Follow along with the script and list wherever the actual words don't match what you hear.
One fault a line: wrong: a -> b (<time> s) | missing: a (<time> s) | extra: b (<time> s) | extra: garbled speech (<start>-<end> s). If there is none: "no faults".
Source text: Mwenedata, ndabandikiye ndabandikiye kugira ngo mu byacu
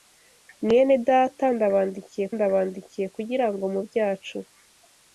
no faults